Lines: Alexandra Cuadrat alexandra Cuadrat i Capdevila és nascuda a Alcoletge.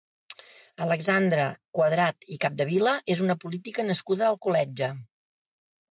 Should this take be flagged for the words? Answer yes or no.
yes